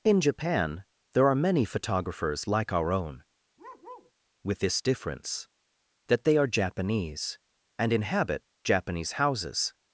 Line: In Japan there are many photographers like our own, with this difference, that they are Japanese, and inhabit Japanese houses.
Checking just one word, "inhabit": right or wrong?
right